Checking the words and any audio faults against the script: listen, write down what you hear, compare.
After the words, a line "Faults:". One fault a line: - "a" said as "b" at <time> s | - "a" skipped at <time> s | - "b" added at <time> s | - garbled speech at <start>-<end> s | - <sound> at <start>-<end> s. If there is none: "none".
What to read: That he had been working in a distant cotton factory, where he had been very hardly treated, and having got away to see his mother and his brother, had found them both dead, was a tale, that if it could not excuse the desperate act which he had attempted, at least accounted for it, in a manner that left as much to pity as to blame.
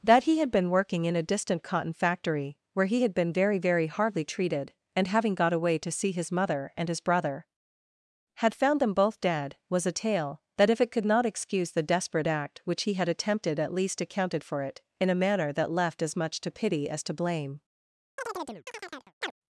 That he had been working in a distant cotton factory, where he had been very very hardly treated, and having got away to see his mother and his brother, had found them both dead, was a tale, that if it could not excuse the desperate act which he had attempted, at least accounted for it, in a manner that left as much to pity as to blame.
Faults:
- "very" added at 3.6 s
- chirp at 18.2-19.3 s